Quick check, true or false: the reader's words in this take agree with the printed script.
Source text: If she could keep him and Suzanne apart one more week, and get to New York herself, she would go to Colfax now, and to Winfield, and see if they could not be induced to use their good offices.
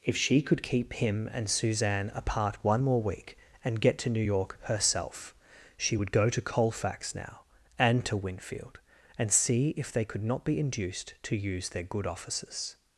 true